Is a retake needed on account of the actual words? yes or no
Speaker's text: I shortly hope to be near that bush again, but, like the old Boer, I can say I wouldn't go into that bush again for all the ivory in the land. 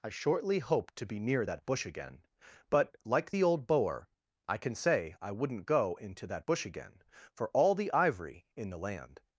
no